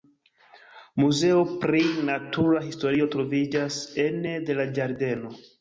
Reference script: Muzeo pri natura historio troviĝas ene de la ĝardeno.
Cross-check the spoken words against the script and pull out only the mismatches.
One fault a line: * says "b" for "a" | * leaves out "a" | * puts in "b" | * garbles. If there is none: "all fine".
all fine